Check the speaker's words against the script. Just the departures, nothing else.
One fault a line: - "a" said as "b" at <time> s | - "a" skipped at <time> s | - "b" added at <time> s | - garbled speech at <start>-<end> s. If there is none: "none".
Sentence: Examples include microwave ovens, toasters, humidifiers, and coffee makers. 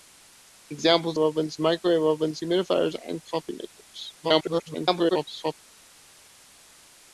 - "include" said as "ovens" at 1.2 s
- "toasters" skipped at 2.4 s
- garbled speech at 4.2-5.5 s